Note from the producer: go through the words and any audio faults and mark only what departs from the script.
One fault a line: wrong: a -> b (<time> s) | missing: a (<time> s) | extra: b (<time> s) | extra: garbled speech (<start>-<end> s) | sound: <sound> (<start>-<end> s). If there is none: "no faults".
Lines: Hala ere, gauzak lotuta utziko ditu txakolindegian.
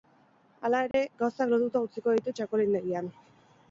sound: dropout (0.9-0.9 s)